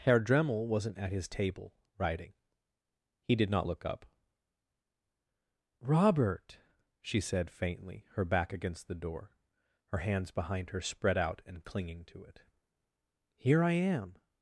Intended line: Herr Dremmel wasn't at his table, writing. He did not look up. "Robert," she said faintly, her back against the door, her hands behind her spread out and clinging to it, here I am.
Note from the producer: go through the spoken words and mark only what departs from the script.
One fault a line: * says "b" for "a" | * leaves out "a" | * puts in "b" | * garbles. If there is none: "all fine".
all fine